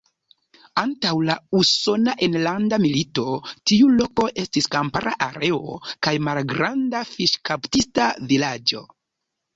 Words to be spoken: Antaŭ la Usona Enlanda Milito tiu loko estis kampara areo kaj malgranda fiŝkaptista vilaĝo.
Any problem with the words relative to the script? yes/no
no